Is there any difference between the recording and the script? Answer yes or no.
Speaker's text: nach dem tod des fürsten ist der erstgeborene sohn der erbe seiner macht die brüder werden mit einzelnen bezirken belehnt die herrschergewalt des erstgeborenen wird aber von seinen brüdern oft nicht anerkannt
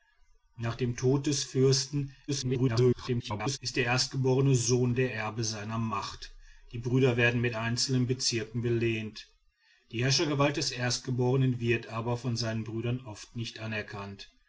yes